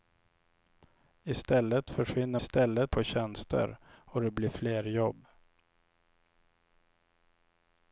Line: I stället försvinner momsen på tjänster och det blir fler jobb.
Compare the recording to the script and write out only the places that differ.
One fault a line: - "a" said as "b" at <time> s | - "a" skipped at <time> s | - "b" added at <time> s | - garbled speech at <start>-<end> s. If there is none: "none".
- "momsen" said as "stället" at 2.4 s